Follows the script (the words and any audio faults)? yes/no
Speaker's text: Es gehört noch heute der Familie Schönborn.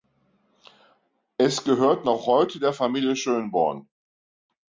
yes